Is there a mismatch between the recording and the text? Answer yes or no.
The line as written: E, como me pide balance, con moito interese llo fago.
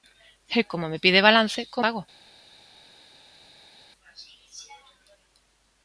yes